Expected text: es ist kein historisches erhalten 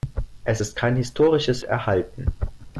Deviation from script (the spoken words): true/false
false